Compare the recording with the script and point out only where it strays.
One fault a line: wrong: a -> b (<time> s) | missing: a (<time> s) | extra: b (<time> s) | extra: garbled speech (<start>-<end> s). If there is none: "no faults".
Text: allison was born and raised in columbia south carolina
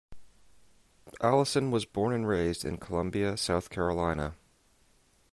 no faults